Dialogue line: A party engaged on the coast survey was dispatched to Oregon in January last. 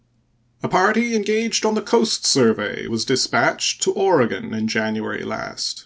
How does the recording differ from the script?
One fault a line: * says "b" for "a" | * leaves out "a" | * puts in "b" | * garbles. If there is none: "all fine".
all fine